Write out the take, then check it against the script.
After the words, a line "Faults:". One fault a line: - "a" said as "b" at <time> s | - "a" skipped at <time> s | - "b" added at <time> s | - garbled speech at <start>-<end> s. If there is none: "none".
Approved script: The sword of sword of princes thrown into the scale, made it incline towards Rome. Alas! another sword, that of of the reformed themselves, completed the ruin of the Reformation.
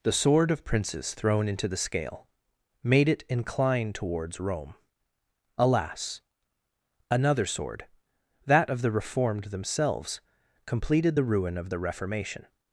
The sword of princes thrown into the scale, made it incline towards Rome. Alas! another sword, that of the reformed themselves, completed the ruin of the Reformation.
Faults:
- "sword of" skipped at 0.6 s
- "of" skipped at 8.8 s